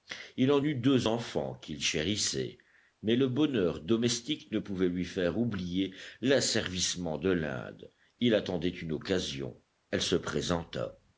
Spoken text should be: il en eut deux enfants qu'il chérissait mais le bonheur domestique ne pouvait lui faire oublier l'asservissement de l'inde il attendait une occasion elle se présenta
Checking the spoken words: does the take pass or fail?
pass